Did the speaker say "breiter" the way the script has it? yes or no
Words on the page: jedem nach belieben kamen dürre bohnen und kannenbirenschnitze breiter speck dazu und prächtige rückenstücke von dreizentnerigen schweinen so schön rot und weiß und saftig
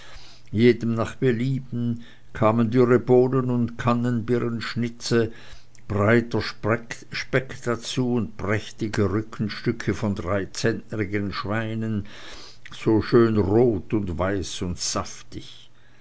yes